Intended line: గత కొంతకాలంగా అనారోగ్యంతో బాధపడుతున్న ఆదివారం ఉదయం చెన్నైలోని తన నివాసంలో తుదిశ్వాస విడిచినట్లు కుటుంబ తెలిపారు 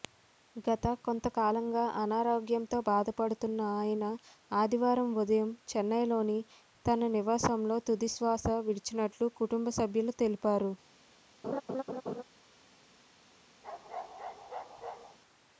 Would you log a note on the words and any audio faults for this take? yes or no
yes